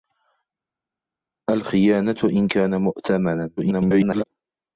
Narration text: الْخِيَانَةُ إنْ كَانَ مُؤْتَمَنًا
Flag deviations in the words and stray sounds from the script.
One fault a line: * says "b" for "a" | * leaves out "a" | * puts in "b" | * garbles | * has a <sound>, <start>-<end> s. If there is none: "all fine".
* garbles